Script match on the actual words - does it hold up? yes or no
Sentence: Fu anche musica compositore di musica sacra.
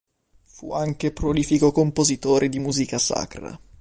no